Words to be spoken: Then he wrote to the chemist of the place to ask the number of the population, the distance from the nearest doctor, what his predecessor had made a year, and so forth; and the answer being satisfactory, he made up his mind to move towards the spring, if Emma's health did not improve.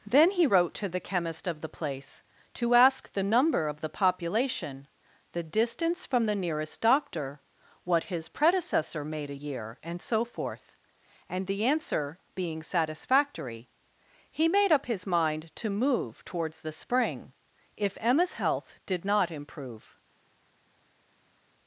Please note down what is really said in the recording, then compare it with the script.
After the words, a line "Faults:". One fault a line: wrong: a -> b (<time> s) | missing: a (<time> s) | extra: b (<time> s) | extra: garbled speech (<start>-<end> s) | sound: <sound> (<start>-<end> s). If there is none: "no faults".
Then he wrote to the chemist of the place to ask the number of the population, the distance from the nearest doctor, what his predecessor made a year, and so forth; and the answer being satisfactory, he made up his mind to move towards the spring, if Emma's health did not improve.
Faults:
missing: had (9.0 s)